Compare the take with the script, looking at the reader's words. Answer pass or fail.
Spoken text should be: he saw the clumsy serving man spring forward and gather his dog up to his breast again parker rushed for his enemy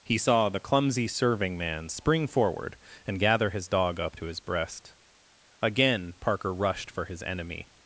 pass